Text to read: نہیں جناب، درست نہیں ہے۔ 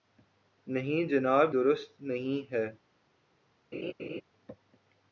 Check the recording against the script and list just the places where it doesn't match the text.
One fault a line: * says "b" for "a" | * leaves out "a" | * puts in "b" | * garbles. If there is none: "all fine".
all fine